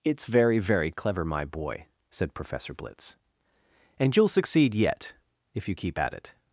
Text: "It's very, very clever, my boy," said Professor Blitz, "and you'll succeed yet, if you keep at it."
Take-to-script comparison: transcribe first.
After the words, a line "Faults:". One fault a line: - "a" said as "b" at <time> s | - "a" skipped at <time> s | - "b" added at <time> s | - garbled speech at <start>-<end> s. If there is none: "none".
"It's very, very clever, my boy," said Professor Blitz, "and you'll succeed yet, if you keep at it."
Faults:
none